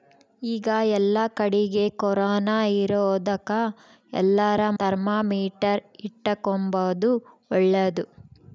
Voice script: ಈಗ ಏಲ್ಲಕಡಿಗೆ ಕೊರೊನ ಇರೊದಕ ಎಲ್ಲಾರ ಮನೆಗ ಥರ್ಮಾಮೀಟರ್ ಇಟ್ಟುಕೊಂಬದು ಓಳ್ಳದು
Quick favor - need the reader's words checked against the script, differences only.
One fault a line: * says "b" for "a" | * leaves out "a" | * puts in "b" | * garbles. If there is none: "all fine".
* leaves out "ಮನೆಗ"